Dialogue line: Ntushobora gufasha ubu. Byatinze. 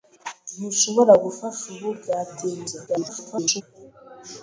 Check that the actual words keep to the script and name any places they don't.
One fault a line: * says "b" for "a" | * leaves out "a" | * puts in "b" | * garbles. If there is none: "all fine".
* garbles